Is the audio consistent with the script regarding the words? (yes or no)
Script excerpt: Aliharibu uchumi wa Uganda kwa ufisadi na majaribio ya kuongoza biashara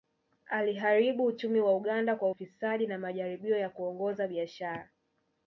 yes